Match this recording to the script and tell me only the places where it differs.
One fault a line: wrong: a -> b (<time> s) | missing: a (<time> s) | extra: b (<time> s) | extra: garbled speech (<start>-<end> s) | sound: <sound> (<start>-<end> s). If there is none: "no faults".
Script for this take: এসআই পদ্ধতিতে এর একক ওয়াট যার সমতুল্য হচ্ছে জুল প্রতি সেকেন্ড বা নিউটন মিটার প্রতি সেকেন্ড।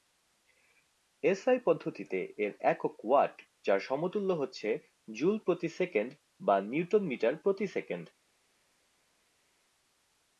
no faults